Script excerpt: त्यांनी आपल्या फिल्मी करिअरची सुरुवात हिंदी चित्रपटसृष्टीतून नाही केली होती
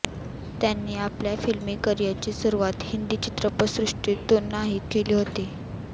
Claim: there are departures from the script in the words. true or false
false